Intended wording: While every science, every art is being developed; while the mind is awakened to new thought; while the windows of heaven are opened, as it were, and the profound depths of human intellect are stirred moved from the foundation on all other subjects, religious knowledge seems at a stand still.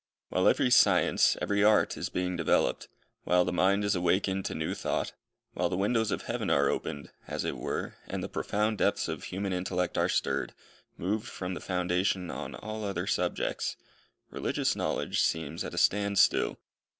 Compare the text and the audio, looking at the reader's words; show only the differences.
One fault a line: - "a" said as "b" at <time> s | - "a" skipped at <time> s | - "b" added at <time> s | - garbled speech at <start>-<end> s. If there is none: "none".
none